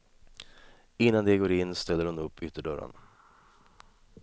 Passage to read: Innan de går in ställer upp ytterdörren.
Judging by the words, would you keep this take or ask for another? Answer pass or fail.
fail